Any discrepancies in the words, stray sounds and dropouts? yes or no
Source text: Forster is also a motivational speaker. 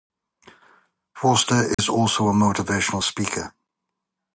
yes